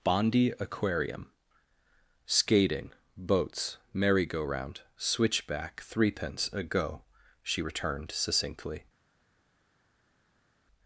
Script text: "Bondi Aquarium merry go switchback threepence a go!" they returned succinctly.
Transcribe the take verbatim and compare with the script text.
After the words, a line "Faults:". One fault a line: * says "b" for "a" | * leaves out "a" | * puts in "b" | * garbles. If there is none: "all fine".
"Bondi Aquarium skating, boats, merry go round, switchback threepence a go!" she returned succinctly.
Faults:
* puts in "skating boats"
* puts in "round"
* says "she" for "they"